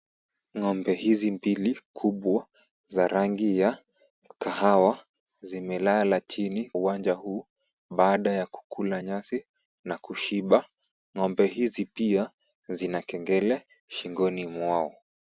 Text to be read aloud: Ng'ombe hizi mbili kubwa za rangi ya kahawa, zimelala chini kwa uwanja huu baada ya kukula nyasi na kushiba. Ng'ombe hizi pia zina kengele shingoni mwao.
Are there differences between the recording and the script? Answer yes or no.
yes